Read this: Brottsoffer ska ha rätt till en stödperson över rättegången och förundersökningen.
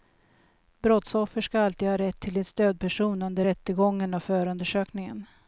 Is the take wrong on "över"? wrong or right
wrong